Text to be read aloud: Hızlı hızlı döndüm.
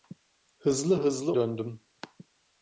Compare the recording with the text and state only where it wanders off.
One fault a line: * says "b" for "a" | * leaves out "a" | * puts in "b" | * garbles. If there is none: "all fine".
all fine